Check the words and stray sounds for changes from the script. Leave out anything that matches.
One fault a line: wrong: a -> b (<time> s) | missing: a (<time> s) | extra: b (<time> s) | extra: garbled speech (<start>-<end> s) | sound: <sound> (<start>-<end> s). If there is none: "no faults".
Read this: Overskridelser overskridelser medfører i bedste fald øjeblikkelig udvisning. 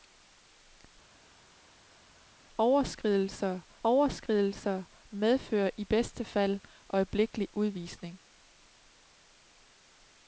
no faults